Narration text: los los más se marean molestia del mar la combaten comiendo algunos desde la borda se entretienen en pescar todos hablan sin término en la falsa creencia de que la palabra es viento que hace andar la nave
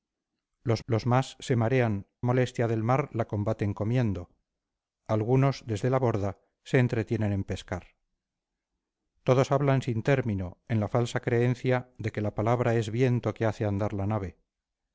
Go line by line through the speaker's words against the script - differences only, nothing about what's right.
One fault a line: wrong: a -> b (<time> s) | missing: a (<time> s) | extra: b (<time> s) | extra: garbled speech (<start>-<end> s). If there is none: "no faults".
no faults